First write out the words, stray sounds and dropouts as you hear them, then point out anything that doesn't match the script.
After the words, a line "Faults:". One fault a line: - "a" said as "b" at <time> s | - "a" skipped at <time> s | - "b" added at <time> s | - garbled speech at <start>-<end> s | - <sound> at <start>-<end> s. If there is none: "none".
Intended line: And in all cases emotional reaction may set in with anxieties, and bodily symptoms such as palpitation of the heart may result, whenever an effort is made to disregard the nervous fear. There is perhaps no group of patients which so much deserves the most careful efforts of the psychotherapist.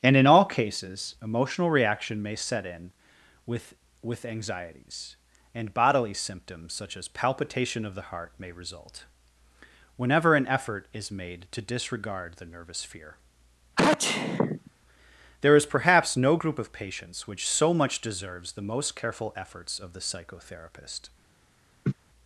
And in all cases emotional reaction may set in with with anxieties, and bodily symptoms such as palpitation of the heart may result, whenever an effort is made to disregard the nervous fear. There is perhaps no group of patients which so much deserves the most careful efforts of the psychotherapist.
Faults:
- "with" added at 4.0 s
- sneeze at 13.8-14.7 s
- laugh at 21.8-21.9 s